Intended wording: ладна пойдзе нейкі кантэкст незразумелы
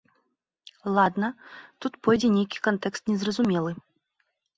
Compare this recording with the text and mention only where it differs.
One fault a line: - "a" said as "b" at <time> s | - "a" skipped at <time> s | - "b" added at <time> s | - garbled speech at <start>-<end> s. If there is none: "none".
- "тут" added at 1.9 s